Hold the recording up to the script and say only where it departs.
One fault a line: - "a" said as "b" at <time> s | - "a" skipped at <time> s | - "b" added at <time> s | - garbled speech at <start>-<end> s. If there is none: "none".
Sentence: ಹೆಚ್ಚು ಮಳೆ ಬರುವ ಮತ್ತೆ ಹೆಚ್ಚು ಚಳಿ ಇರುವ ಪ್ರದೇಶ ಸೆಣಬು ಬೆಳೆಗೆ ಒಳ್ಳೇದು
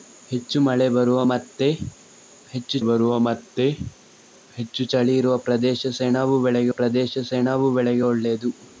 - "ಬರುವ ಮತ್ತೆ ಹೆಚ್ಚು" added at 2.8 s
- "ಪ್ರದೇಶ ಸೆಣಬು ಬೆಳೆಗೆ" added at 6.7 s